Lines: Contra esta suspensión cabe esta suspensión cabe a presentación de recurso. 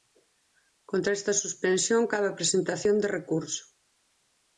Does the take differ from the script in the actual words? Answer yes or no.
yes